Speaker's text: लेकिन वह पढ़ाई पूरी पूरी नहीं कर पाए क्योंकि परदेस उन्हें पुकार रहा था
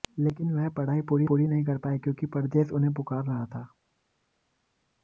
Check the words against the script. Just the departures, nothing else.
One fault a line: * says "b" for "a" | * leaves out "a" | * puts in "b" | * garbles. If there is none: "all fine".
all fine